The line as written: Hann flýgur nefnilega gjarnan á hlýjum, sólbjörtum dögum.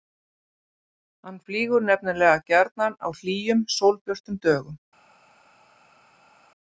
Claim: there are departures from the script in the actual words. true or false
false